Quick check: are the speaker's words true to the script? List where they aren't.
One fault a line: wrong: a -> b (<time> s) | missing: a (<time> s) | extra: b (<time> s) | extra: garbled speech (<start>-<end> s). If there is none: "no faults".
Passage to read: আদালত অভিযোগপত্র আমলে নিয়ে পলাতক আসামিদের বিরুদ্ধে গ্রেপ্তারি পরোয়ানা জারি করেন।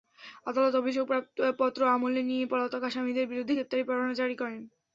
no faults